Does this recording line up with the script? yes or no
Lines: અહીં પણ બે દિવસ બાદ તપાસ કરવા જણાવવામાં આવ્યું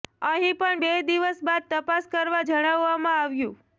yes